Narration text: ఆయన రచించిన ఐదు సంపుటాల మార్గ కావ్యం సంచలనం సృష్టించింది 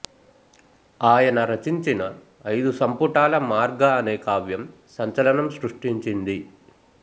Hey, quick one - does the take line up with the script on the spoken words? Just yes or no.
no